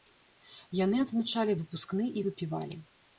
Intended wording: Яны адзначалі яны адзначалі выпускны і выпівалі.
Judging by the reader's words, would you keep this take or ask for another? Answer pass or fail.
fail